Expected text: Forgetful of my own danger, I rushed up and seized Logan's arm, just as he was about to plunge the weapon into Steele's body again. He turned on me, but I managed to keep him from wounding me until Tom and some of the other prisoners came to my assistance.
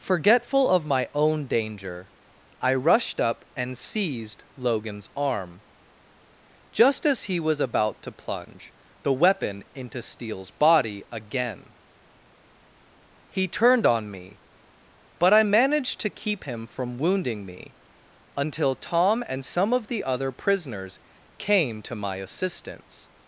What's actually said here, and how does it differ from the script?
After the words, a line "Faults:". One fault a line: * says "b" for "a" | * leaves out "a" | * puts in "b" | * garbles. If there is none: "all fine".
Forgetful of my own danger, I rushed up and seized Logan's arm, just as he was about to plunge the weapon into Steele's body again. He turned on me, but I managed to keep him from wounding me until Tom and some of the other prisoners came to my assistance.
Faults:
all fine